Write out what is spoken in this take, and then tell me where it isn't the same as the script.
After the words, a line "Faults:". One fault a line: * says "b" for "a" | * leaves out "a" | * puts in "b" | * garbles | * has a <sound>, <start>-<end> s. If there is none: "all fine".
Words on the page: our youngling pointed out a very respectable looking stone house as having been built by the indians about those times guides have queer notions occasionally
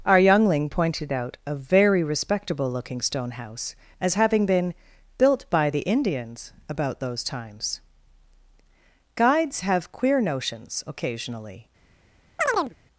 our youngling pointed out a very respectable looking stone house as having been built by the indians about those times guides have queer notions occasionally
Faults:
* has a chirp, 12.4-12.7 s